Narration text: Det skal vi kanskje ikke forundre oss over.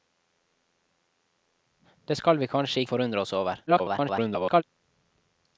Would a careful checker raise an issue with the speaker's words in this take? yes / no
yes